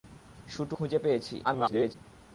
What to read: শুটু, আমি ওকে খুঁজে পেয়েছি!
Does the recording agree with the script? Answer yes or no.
no